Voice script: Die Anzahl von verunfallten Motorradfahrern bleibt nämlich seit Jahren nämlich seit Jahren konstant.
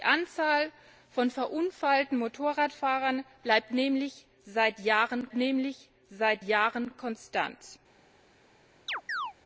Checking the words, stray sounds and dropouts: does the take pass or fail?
fail